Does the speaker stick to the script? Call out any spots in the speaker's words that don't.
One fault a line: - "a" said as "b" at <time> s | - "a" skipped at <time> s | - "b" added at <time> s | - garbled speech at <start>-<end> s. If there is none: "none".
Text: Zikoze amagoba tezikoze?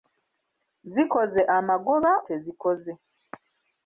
none